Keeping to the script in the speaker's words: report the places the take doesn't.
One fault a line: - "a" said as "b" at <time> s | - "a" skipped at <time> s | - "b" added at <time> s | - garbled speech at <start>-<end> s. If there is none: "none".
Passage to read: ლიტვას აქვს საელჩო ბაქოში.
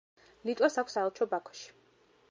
none